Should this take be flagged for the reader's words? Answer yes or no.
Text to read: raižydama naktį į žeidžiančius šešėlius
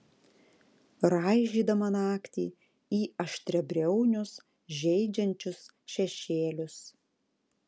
yes